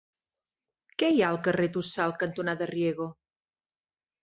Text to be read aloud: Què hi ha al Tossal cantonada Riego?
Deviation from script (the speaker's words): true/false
true